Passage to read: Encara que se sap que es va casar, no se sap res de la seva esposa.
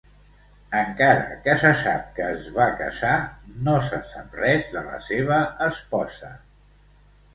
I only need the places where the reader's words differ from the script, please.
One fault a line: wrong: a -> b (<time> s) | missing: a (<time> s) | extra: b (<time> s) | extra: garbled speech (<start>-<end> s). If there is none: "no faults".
no faults